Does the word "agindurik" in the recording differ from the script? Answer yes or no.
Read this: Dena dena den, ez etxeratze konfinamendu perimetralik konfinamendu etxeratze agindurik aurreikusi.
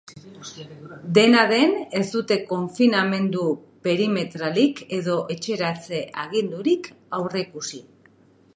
no